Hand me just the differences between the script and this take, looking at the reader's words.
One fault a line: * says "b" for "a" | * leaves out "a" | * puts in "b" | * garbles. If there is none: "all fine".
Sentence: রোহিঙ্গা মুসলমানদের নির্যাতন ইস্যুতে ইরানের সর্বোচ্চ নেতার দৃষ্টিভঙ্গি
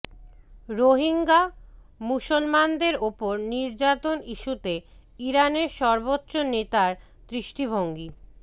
* puts in "ওপর"